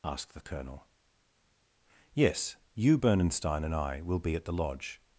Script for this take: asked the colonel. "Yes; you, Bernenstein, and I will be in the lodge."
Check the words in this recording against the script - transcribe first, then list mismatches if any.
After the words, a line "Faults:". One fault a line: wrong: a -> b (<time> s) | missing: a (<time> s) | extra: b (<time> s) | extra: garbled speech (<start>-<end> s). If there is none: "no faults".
asked the colonel. "Yes; you, Bernenstein, and I will be at the lodge."
Faults:
wrong: in -> at (4.3 s)